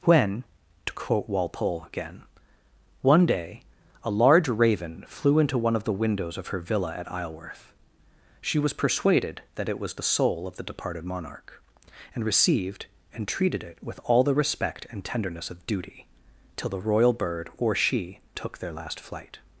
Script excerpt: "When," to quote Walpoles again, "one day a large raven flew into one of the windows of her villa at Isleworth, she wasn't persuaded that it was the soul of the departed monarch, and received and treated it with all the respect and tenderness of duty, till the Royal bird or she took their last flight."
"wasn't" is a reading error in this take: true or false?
true